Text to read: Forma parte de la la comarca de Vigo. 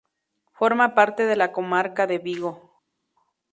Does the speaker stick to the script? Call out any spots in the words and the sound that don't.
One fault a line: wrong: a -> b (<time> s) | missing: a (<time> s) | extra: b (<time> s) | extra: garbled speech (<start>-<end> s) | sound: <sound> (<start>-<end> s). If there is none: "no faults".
missing: la (1.5 s)